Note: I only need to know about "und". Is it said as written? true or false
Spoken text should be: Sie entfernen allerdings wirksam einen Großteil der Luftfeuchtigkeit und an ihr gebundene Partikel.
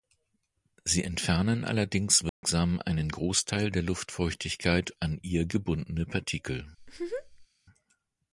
false